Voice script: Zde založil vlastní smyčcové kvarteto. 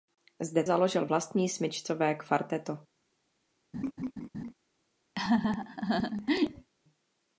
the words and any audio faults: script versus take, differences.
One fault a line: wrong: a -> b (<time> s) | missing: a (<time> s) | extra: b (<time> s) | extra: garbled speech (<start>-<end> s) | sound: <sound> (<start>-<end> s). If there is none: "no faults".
sound: laugh (3.7-4.5 s)
sound: laugh (5.1-6.7 s)